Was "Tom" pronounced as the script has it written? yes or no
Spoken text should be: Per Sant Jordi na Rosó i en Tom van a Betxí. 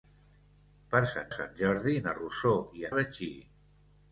no